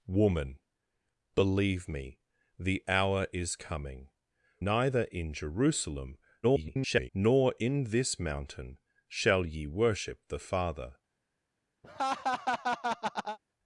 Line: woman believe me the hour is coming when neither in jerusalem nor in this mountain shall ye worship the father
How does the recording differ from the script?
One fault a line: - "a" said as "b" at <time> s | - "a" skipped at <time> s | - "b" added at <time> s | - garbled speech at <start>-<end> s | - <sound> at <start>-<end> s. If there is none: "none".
- "when" skipped at 4.1 s
- garbled speech at 6.4-7.1 s
- laugh at 11.8-13.4 s